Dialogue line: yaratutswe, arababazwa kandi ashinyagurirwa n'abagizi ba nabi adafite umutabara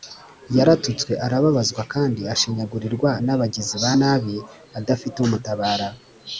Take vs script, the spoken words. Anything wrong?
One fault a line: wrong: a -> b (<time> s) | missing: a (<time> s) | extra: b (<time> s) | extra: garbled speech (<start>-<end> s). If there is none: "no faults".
no faults